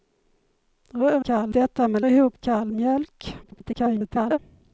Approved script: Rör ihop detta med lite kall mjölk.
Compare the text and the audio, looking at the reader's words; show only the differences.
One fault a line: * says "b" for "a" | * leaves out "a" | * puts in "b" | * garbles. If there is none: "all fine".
* says "kall" for "ihop"
* says "ihop" for "lite"
* garbles